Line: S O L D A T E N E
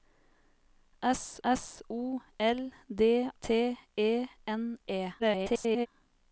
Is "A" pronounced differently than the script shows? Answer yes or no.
yes